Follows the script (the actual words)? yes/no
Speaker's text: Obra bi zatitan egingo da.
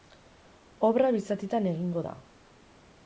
yes